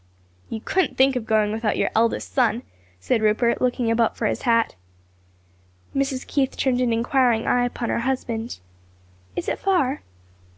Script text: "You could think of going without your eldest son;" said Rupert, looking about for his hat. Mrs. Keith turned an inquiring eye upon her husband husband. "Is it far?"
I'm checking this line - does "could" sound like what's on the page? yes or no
no